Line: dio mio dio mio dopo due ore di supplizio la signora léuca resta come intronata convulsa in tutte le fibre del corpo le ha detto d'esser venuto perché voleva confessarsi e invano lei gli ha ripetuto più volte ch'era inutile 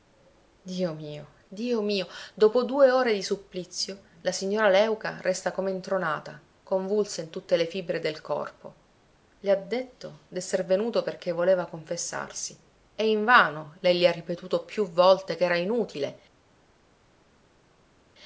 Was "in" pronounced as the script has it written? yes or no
yes